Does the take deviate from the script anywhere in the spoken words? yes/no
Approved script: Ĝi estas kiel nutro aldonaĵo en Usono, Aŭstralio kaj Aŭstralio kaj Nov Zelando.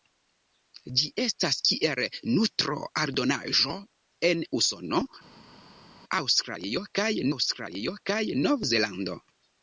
no